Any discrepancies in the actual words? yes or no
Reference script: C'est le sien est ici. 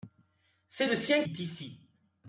no